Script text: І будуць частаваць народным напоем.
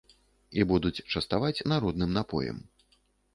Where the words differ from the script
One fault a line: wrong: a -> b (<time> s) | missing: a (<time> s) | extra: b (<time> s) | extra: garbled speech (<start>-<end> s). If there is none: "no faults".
no faults